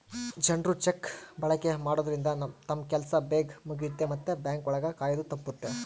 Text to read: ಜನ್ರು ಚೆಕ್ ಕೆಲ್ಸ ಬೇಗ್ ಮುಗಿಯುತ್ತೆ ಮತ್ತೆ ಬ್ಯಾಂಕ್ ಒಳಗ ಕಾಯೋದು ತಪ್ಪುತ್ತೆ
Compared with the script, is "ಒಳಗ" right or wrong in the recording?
right